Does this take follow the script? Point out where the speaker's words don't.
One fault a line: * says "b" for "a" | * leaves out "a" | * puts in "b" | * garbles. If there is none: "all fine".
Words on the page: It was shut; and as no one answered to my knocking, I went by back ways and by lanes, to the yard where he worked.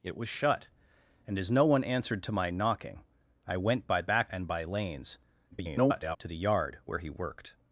* leaves out "ways"
* garbles